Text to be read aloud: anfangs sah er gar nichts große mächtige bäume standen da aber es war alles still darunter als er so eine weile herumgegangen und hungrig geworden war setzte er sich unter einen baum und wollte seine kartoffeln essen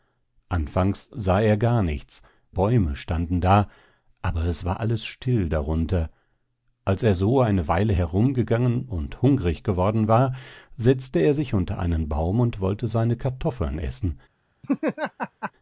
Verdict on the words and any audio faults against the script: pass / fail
fail